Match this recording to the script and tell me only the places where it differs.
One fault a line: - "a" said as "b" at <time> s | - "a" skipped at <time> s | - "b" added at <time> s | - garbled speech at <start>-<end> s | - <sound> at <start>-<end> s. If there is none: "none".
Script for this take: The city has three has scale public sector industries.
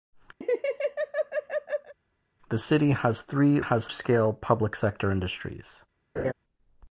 - laugh at 0.4-1.9 s
- laugh at 6.2-6.3 s